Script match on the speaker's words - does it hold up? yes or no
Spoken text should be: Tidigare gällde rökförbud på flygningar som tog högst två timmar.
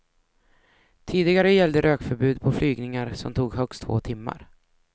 yes